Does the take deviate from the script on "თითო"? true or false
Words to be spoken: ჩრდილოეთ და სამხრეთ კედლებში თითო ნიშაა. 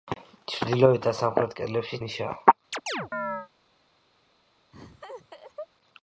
true